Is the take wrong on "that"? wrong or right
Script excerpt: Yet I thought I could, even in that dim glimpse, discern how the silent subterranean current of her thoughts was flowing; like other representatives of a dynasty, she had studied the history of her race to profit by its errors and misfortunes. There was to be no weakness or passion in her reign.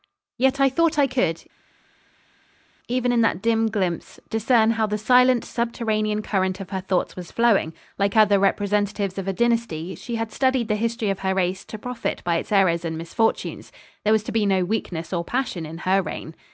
right